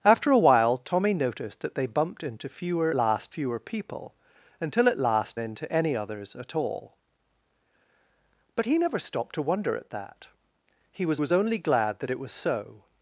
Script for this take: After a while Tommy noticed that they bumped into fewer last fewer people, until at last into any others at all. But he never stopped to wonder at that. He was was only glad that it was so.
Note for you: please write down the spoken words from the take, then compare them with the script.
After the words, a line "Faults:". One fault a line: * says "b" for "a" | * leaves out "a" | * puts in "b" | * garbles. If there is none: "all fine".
After a while Tommy noticed that they bumped into fewer last fewer people, until at last into any others at all. But he never stopped to wonder at that. He was was only glad that it was so.
Faults:
all fine